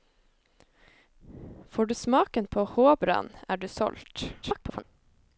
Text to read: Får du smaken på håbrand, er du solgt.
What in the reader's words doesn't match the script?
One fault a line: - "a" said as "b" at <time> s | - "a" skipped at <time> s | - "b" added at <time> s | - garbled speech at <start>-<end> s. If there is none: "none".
- garbled speech at 4.4-4.8 s